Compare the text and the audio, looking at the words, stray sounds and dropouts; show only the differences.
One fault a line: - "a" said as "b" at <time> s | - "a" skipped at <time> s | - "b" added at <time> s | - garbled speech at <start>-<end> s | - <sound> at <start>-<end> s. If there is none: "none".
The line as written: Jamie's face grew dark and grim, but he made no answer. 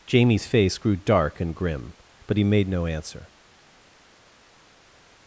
none